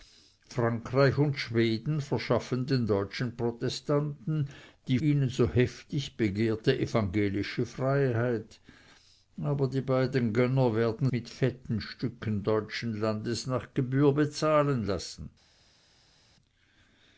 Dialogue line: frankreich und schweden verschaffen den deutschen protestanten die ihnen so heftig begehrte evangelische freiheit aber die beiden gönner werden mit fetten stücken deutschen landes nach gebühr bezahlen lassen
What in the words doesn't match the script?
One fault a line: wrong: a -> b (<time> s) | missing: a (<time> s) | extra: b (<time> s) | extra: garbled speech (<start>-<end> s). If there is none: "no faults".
no faults